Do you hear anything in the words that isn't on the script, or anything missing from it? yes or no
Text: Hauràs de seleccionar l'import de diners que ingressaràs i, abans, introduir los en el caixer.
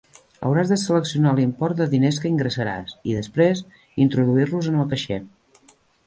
yes